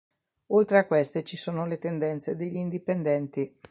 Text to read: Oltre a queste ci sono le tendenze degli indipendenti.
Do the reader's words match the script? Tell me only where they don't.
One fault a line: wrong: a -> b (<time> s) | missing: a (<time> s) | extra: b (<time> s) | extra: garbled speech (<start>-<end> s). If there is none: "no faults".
no faults